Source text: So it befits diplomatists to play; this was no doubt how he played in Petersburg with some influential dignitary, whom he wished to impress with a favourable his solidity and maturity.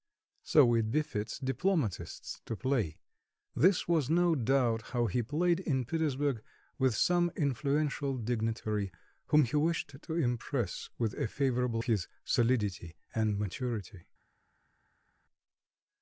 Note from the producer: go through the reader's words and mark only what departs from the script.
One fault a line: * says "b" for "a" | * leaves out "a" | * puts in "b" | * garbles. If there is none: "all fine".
all fine